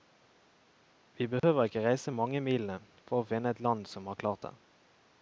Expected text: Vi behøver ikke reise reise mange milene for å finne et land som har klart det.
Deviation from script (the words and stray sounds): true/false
true